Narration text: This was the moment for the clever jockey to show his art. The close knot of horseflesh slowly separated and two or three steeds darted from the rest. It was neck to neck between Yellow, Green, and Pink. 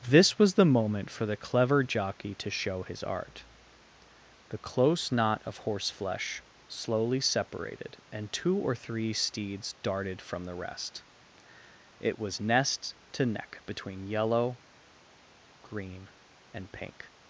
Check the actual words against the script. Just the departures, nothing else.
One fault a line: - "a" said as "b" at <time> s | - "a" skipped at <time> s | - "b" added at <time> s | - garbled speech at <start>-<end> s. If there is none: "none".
- "neck" said as "nest" at 12.4 s